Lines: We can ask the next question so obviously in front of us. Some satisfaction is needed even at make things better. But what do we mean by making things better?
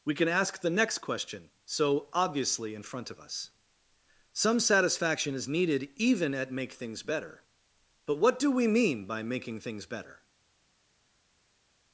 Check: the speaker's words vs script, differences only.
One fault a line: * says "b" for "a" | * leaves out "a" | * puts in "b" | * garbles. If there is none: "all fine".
all fine